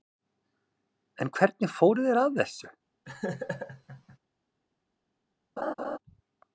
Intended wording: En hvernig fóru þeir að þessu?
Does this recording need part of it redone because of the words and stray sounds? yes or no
yes